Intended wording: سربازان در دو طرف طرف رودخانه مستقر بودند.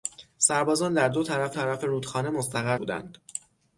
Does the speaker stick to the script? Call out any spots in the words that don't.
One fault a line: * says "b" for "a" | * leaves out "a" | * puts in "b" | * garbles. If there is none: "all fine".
all fine